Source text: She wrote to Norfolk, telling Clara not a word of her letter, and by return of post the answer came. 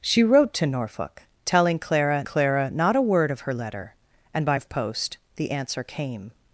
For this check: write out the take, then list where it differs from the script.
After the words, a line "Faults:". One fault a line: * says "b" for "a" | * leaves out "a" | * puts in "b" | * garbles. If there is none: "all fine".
She wrote to Norfolk, telling Clara Clara not a word of her letter, and by of post the answer came.
Faults:
* puts in "Clara"
* leaves out "return"